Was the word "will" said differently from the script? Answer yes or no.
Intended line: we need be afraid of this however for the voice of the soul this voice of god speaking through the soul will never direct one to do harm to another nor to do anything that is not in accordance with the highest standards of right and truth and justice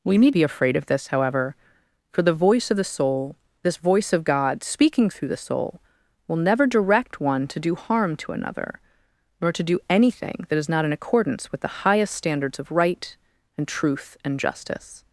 no